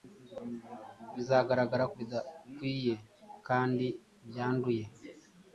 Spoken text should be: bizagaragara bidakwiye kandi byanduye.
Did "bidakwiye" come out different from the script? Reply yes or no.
no